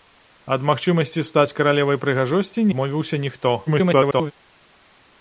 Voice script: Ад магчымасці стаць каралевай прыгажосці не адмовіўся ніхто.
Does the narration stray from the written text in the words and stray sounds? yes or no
yes